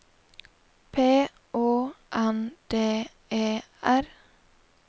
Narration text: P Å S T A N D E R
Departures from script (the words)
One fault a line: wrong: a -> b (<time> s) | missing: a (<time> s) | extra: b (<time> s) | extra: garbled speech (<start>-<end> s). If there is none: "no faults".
missing: S T A (1.9 s)